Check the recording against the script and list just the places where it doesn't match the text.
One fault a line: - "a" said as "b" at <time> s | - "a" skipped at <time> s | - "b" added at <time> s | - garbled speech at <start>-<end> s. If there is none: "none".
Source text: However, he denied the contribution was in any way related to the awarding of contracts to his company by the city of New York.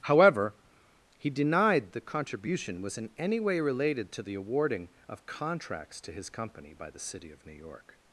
none